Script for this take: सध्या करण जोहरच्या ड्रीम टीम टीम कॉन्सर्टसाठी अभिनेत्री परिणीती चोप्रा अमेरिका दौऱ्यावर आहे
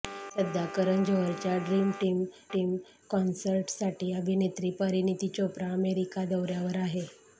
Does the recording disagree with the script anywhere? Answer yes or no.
no